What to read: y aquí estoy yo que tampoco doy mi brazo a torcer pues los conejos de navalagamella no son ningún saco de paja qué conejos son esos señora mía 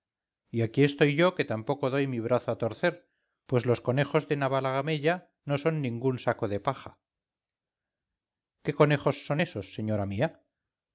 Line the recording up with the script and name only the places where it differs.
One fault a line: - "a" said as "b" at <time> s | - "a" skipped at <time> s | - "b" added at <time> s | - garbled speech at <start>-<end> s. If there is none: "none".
none